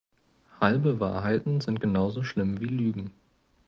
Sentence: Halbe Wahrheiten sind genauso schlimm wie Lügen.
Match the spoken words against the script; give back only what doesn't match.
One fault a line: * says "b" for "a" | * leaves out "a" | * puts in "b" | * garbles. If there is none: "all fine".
all fine